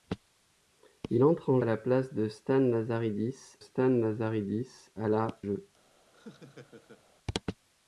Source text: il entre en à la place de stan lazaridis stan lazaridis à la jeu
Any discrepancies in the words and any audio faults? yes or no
yes